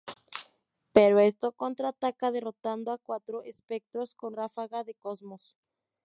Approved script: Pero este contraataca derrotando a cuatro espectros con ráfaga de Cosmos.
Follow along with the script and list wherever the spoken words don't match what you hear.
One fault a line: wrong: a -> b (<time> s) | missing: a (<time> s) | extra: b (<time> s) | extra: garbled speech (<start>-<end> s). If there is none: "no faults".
no faults